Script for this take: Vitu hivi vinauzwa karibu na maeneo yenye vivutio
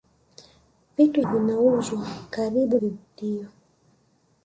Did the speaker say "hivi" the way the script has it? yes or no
no